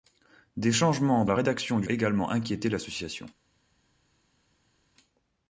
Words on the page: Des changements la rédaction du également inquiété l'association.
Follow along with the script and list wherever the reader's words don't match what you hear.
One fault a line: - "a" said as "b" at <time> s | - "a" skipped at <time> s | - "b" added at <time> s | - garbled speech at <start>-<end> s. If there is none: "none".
none